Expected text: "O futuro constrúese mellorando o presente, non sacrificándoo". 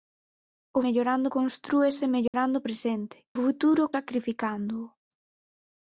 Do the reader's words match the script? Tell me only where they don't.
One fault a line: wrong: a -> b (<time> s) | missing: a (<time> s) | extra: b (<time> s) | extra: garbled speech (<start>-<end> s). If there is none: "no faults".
wrong: futuro -> mellorando (0.9 s)
wrong: non -> futuro (3.4 s)